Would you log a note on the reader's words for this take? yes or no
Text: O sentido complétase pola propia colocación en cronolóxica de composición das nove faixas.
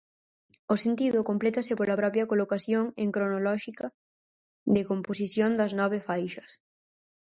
no